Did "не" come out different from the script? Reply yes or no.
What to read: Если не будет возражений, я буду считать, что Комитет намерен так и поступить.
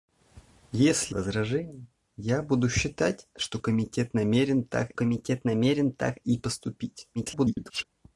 yes